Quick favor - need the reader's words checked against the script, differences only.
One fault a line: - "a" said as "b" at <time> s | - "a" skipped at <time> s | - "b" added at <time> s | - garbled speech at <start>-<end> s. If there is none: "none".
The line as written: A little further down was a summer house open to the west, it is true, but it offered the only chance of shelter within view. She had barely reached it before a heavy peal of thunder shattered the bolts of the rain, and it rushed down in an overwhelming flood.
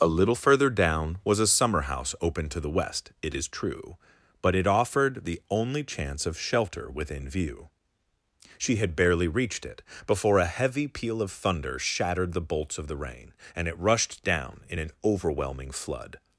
none